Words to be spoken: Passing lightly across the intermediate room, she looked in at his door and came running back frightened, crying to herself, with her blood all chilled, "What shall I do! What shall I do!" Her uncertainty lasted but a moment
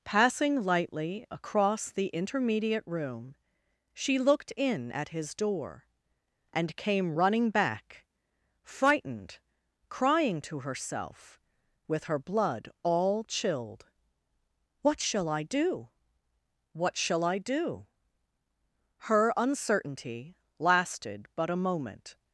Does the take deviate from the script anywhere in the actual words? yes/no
no